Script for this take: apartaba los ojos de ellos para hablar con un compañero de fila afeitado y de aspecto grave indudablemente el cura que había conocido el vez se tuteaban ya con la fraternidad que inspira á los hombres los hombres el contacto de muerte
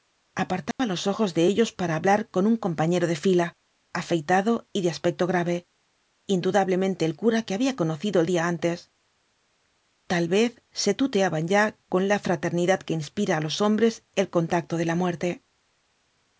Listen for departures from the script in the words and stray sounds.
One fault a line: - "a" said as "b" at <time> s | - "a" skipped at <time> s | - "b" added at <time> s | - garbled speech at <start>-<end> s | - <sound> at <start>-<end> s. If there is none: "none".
- dropout at 0.7-0.8 s
- "día antes tal" added at 8.3 s
- "los hombres" skipped at 14.0 s
- "la" added at 14.8 s